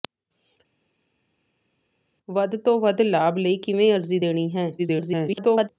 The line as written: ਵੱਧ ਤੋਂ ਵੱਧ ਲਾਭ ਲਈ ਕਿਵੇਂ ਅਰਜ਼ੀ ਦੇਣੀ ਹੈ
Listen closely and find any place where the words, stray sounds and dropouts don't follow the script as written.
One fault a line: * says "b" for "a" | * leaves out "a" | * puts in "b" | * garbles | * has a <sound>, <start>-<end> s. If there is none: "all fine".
* garbles